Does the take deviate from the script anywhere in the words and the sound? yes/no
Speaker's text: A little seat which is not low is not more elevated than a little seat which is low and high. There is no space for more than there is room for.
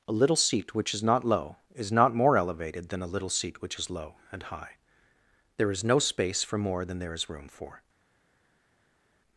no